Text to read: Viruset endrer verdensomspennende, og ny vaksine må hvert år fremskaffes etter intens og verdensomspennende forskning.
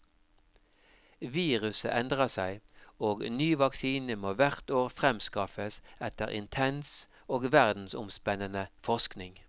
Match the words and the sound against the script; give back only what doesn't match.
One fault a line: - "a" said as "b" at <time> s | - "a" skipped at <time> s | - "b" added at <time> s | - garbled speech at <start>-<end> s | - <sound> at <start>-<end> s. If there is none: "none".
- "verdensomspennende" said as "seg" at 2.3 s